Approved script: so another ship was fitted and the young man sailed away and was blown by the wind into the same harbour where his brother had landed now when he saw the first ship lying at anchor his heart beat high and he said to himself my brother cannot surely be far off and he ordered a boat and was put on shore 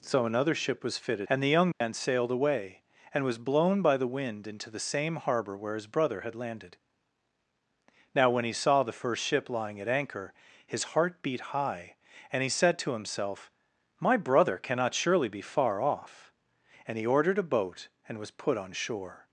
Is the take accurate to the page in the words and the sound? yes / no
no